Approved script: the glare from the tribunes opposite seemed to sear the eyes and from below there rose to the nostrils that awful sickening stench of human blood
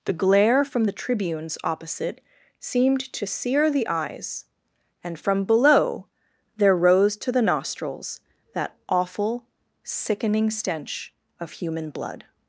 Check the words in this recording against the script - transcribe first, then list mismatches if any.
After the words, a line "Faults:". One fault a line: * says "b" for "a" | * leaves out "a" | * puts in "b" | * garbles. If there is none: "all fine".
the glare from the tribunes opposite seemed to sear the eyes and from below there rose to the nostrils that awful sickening stench of human blood
Faults:
all fine